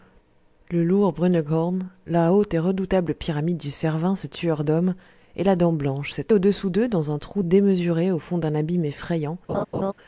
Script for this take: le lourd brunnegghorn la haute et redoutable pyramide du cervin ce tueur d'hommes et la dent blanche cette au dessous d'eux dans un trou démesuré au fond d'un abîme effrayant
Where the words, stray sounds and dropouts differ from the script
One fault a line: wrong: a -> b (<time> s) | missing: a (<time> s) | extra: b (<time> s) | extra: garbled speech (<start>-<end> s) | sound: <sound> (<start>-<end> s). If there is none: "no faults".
sound: laugh (9.5-9.9 s)